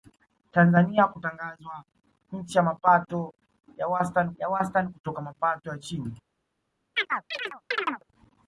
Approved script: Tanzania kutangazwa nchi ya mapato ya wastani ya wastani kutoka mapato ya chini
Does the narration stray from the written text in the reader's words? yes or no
no